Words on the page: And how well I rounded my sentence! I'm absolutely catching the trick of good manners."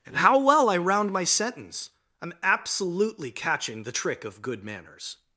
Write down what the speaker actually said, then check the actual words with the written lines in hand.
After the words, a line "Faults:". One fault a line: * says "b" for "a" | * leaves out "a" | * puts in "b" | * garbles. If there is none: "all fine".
And how well I round my sentence! I'm absolutely catching the trick of good manners."
Faults:
* says "round" for "rounded"